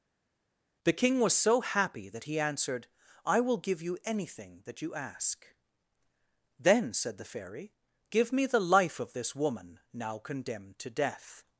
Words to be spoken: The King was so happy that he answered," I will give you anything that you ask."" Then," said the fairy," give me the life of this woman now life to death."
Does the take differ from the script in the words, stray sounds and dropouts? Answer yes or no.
yes